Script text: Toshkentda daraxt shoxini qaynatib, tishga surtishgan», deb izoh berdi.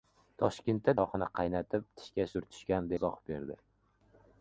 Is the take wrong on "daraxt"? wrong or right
wrong